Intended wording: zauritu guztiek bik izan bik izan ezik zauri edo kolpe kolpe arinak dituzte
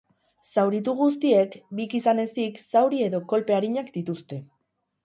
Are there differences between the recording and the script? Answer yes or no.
yes